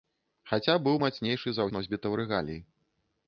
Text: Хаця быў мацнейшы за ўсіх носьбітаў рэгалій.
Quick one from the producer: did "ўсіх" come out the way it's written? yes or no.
no